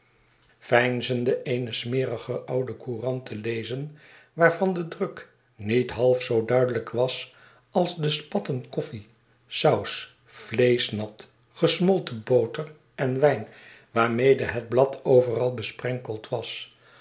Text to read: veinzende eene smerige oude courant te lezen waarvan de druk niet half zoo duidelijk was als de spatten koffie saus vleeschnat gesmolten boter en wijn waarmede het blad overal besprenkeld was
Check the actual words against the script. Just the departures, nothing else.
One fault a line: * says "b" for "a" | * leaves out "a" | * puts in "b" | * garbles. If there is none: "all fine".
all fine